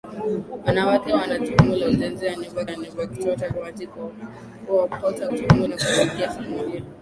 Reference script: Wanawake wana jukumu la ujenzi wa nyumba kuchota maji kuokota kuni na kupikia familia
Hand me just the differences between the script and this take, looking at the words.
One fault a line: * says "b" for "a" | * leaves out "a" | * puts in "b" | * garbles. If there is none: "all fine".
* puts in "wa nyumba"
* says "jukumu" for "kuni"